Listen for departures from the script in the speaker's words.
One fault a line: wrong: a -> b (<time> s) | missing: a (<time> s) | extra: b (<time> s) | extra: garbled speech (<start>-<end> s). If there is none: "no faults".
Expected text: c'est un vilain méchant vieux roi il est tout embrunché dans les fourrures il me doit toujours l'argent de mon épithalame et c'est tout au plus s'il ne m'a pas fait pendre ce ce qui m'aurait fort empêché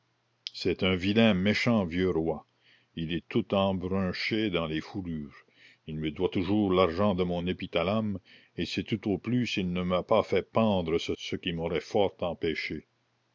no faults